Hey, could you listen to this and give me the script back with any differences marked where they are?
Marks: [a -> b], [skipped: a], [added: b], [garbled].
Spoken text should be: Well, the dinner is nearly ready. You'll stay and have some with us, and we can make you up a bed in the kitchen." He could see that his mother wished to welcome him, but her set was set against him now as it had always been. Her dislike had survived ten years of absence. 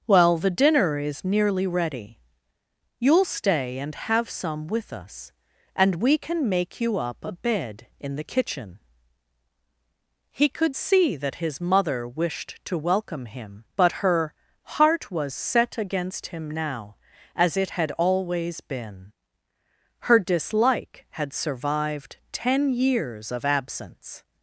Well, the dinner is nearly ready. You'll stay and have some with us, and we can make you up a bed in the kitchen." He could see that his mother wished to welcome him, but her [set -> heart] was set against him now as it had always been. Her dislike had survived ten years of absence.